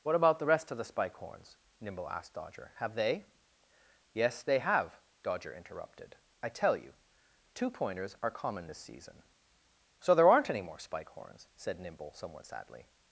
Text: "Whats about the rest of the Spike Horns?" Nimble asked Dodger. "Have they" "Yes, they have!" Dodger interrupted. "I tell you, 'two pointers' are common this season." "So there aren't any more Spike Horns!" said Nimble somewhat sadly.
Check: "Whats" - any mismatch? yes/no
yes